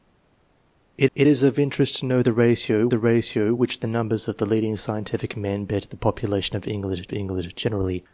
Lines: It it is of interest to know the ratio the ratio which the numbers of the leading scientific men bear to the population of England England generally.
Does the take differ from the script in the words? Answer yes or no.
no